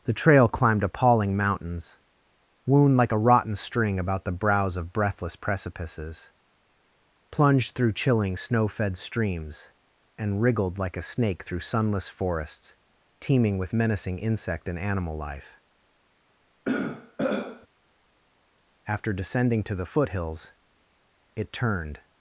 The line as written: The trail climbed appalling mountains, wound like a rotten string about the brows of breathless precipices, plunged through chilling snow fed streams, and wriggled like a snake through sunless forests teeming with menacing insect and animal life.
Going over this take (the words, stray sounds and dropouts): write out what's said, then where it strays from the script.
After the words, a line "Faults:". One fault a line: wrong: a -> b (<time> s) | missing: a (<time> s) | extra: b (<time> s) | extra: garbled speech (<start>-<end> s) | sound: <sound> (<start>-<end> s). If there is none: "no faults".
The trail climbed appalling mountains, wound like a rotten string about the brows of breathless precipices, plunged through chilling snow fed streams, and wriggled like a snake through sunless forests teeming with menacing insect and animal life. After descending to the foothills it turned
Faults:
sound: throat clearing (16.6-17.7 s)
extra: After descending to the foothills it turned (18.8 s)